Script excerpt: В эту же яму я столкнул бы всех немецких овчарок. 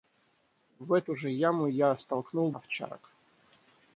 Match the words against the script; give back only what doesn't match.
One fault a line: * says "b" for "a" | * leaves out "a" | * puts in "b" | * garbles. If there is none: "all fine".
* leaves out "бы всех немецких"